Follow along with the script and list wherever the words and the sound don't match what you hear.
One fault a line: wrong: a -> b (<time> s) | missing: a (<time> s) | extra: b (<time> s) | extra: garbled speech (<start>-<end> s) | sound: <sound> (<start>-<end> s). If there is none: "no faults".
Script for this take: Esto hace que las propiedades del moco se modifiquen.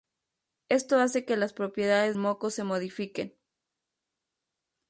missing: del (2.2 s)